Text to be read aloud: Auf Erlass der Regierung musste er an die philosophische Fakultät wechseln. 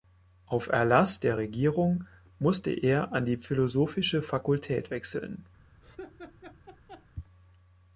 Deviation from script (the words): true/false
false